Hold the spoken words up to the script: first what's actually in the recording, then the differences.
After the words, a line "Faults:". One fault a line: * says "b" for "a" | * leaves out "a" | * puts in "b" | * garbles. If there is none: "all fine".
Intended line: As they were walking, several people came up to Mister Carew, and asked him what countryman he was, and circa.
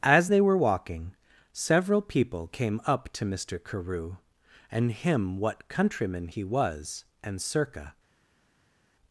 As they were walking, several people came up to Mister Carew, and him what countryman he was, and circa.
Faults:
* leaves out "asked"